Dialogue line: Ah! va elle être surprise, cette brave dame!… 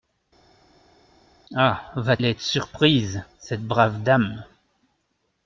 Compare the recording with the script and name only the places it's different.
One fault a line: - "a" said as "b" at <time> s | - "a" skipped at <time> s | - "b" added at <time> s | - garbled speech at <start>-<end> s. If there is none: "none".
none